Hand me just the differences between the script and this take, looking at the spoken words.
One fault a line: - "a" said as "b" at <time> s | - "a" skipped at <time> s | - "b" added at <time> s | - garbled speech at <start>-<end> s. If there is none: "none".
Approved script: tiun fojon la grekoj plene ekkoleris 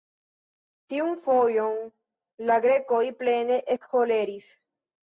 none